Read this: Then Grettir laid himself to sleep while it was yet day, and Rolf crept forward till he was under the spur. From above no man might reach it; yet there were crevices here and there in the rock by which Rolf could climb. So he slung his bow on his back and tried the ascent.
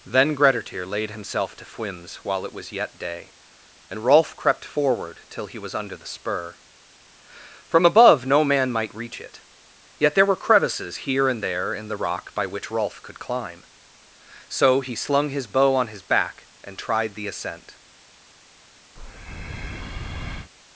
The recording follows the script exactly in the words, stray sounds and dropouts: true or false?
false